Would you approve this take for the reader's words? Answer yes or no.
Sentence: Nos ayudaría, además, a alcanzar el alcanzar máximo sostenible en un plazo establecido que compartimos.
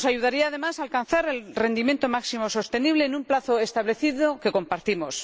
no